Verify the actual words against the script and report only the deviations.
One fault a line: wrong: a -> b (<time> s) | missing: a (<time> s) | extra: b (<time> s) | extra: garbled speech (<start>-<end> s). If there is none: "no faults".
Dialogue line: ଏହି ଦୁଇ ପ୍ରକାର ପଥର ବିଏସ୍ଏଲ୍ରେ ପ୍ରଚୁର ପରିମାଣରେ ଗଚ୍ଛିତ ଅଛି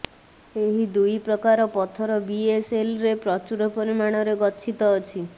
no faults